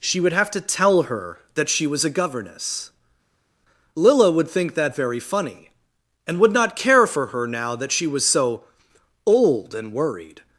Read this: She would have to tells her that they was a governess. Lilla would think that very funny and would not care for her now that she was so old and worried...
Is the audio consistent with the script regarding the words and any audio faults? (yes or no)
no